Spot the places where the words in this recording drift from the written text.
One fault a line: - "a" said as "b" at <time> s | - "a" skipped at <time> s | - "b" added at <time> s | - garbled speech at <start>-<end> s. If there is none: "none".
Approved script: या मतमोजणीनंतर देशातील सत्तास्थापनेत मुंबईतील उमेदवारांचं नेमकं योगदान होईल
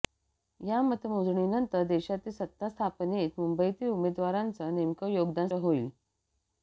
none